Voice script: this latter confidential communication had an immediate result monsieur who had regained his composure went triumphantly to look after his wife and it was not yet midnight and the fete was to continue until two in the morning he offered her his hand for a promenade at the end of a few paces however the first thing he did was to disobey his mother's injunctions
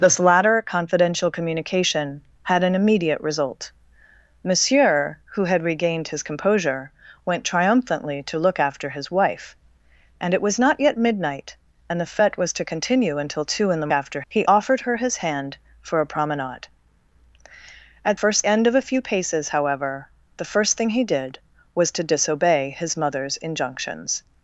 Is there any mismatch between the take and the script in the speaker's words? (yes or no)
yes